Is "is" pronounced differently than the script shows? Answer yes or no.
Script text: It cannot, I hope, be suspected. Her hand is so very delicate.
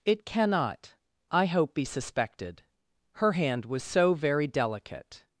yes